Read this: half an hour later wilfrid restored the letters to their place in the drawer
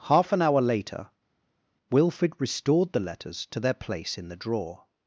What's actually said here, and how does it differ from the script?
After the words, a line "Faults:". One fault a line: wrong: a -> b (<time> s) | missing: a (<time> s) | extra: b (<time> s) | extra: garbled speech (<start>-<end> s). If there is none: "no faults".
half an hour later wilfrid restored the letters to their place in the drawer
Faults:
no faults